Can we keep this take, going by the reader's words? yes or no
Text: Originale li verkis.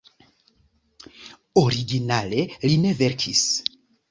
no